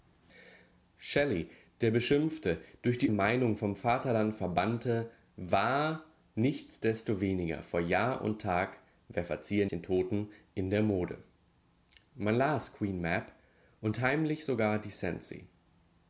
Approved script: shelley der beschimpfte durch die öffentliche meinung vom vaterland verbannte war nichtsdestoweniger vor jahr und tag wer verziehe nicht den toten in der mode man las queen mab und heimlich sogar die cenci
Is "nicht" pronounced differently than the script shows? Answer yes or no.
yes